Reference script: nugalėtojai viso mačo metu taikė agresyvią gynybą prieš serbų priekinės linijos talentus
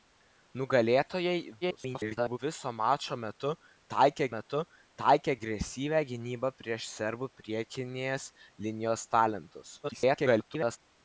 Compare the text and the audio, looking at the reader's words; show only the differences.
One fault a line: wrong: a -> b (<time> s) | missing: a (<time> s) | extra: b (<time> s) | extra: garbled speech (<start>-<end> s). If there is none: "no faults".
extra: garbled speech (1.6-2.4 s)
extra: metu taikė (4.3 s)
extra: garbled speech (9.8-10.8 s)